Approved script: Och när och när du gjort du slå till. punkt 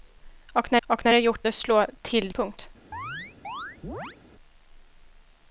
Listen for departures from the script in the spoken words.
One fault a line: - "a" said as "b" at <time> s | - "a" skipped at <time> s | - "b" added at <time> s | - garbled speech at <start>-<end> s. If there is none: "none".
none